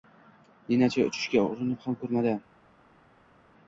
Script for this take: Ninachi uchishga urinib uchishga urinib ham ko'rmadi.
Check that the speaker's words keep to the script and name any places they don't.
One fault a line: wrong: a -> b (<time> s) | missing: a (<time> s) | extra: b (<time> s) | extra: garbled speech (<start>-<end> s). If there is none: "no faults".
missing: uchishga urinib (1.9 s)